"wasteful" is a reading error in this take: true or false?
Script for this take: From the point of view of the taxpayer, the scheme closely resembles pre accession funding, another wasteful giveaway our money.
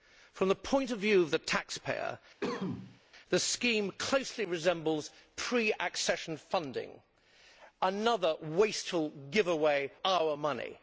false